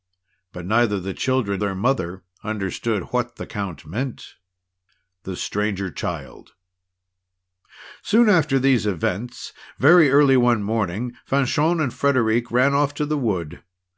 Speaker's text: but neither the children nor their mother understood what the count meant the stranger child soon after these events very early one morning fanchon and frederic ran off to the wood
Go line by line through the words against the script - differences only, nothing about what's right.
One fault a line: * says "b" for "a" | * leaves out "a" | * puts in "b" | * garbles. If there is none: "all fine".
* leaves out "nor"